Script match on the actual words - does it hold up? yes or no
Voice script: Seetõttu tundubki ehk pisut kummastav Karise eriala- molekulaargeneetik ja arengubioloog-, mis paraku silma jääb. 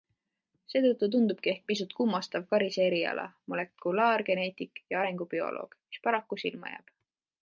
yes